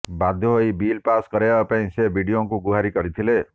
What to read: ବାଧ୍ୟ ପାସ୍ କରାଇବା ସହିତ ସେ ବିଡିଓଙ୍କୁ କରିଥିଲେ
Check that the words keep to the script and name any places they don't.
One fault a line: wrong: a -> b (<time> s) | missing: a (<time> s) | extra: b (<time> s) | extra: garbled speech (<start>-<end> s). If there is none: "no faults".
extra: ହୋଇ ବିଲ୍ (0.5 s)
wrong: ସହିତ -> ପାଇଁ (1.7 s)
extra: ଗୁହାରି (2.6 s)